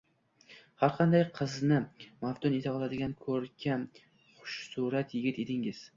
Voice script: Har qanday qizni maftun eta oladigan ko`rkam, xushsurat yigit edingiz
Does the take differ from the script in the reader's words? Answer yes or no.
no